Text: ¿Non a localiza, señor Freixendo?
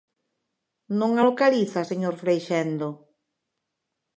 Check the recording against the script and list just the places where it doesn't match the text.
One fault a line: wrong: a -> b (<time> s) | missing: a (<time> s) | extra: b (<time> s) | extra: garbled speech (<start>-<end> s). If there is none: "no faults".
no faults